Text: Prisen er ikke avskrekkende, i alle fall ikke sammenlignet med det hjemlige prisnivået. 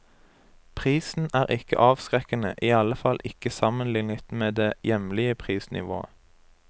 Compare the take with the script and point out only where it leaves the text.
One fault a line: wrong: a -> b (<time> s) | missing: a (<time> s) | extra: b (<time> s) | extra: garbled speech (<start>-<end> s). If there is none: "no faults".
no faults